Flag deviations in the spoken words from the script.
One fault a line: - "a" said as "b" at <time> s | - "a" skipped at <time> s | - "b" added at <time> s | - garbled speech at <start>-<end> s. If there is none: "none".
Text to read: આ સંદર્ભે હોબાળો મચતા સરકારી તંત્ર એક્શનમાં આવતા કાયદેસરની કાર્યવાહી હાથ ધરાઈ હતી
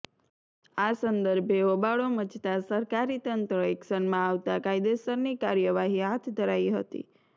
none